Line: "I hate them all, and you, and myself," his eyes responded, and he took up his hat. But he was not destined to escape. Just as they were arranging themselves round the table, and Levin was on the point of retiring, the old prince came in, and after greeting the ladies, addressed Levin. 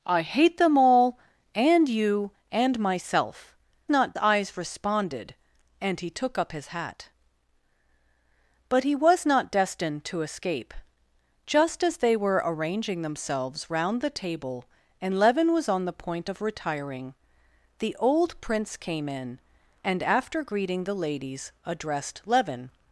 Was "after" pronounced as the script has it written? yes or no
yes